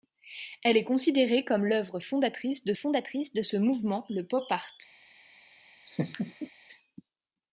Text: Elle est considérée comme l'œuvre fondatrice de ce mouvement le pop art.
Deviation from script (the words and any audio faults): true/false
true